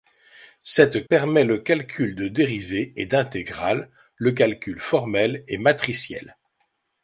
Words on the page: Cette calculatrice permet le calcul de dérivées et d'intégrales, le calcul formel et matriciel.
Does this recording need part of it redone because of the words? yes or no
yes